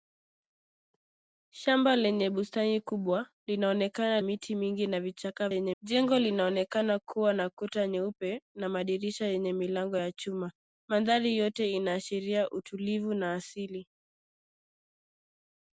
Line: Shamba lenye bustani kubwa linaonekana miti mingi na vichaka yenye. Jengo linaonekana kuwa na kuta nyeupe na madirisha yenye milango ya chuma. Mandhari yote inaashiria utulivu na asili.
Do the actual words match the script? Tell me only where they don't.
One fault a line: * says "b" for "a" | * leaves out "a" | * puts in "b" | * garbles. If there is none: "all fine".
all fine